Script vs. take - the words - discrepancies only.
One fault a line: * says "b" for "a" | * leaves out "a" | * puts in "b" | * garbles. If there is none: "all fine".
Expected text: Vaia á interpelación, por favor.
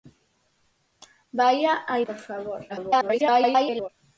* leaves out "interpelación"
* garbles